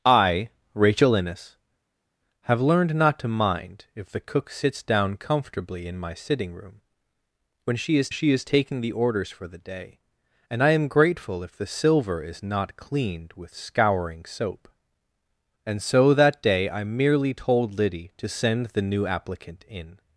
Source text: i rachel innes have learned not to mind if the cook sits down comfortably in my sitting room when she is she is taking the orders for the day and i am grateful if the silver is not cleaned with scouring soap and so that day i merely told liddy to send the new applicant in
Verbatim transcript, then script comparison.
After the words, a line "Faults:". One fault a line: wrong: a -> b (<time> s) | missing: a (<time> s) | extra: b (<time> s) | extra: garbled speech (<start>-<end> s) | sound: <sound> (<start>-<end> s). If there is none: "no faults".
i rachel innes have learned not to mind if the cook sits down comfortably in my sitting room when she is she is taking the orders for the day and i am grateful if the silver is not cleaned with scouring soap and so that day i merely told liddy to send the new applicant in
Faults:
no faults